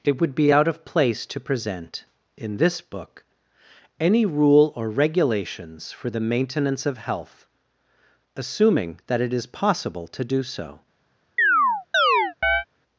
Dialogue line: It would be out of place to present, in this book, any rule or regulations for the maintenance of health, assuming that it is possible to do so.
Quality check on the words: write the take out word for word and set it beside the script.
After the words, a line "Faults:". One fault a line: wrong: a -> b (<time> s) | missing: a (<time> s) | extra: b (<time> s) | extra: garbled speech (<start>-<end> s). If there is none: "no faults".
It would be out of place to present, in this book, any rule or regulations for the maintenance of health, assuming that it is possible to do so.
Faults:
no faults